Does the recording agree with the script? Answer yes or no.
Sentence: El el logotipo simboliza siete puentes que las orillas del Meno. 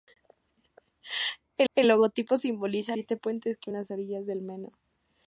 yes